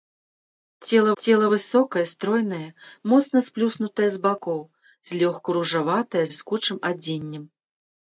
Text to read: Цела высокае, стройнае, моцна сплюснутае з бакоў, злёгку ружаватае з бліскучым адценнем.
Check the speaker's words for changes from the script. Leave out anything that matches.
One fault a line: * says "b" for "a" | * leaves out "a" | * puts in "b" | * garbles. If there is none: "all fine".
* puts in "цела"
* leaves out "з"